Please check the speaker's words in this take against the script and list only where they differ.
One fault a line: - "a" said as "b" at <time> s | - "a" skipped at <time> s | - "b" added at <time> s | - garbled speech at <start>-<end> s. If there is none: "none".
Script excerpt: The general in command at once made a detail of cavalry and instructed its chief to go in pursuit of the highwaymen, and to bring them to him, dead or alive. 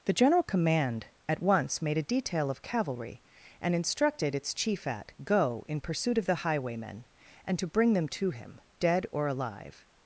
- "in" skipped at 0.4 s
- "to" said as "at" at 4.9 s